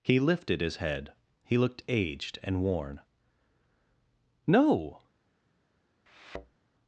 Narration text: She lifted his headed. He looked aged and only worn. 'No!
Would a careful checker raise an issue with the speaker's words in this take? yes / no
yes